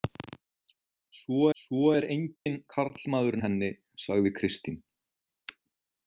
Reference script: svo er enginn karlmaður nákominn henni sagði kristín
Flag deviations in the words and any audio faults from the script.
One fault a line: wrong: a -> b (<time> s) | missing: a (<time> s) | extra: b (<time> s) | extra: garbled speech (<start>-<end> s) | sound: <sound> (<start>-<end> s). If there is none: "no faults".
extra: svo (1.6 s)
sound: dropout (2.4-2.5 s)
missing: nákominn (3.4 s)